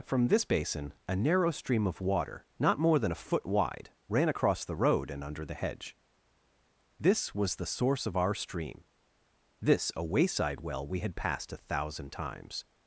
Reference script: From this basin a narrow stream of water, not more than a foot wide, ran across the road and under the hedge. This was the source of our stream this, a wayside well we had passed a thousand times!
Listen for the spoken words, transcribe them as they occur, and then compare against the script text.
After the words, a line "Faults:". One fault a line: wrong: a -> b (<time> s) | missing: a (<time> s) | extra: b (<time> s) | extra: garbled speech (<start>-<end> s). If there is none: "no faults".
From this basin a narrow stream of water, not more than a foot wide, ran across the road and under the hedge. This was the source of our stream this, a wayside well we had passed a thousand times!
Faults:
no faults